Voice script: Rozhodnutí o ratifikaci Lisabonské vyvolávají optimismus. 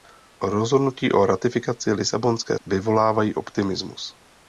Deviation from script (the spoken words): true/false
false